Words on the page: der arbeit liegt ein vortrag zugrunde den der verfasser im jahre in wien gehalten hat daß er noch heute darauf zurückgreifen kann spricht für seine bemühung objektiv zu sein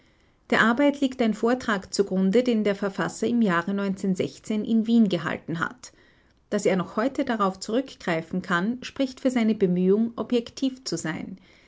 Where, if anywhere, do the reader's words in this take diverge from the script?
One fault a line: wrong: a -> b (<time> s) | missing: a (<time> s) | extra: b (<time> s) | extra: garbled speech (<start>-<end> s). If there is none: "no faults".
no faults